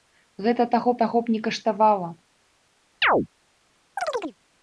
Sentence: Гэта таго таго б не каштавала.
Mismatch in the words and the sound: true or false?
true